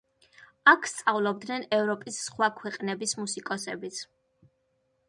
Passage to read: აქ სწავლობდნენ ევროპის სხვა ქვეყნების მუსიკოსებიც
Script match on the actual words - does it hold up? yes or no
yes